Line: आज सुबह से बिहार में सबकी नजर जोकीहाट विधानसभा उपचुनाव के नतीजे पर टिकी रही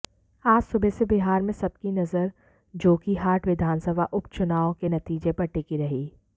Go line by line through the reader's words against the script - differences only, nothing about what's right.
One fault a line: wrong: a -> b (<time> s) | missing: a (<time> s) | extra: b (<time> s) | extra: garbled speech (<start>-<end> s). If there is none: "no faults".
no faults